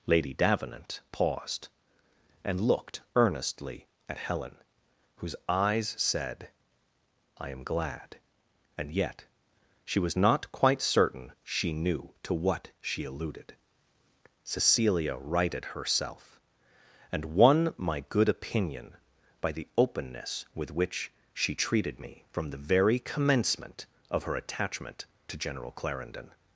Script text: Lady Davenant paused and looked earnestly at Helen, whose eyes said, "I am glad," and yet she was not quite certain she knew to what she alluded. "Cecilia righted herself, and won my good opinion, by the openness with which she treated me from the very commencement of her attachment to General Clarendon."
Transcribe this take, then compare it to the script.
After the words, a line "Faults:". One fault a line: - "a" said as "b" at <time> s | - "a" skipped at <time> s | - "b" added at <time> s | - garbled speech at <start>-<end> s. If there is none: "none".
Lady Davenant paused and looked earnestly at Helen, whose eyes said, "I am glad," and yet she was not quite certain she knew to what she alluded. "Cecilia righted herself, and won my good opinion, by the openness with which she treated me from the very commencement of her attachment to General Clarendon."
Faults:
none